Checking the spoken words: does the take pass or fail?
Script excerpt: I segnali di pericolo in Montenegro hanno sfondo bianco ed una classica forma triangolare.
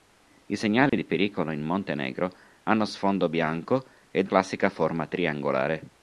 fail